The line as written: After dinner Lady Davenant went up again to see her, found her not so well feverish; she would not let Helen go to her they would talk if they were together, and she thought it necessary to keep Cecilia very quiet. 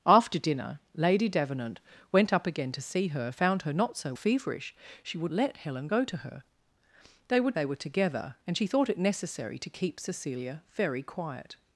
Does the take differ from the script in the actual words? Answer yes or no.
yes